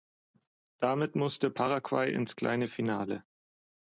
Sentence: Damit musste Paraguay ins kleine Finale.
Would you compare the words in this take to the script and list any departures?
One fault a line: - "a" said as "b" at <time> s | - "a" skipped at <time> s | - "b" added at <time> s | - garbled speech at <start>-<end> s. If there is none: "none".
none